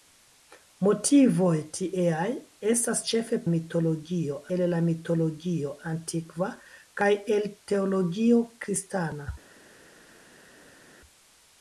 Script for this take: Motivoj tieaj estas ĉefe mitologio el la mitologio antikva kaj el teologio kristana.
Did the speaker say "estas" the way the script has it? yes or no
yes